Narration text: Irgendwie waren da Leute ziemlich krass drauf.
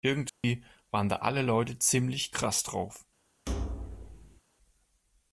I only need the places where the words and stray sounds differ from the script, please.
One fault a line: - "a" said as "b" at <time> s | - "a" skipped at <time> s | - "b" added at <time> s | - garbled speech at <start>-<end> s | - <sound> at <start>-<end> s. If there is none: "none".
- dropout at 0.3-0.4 s
- "alle" added at 1.2 s
- thud at 3.5-4.4 s